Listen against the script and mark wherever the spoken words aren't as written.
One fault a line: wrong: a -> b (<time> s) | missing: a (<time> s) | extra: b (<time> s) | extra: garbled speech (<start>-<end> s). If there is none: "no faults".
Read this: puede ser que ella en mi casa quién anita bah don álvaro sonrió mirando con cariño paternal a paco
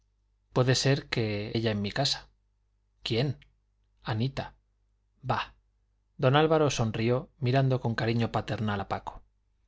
no faults